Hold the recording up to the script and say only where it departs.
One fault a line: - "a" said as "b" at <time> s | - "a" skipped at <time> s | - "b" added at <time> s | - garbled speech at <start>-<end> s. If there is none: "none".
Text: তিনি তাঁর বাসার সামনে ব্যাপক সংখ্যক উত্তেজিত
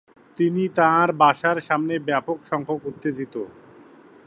none